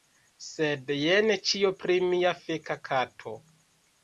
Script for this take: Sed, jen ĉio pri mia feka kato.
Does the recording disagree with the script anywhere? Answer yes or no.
no